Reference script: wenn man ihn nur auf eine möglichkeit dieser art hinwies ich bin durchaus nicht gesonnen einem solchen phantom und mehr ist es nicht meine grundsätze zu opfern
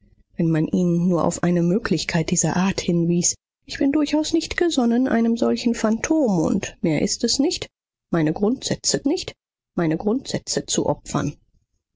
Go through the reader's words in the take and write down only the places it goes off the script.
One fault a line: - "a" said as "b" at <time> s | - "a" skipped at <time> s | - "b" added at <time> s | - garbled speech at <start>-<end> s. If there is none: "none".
- "nicht meine grundsätze" added at 9.0 s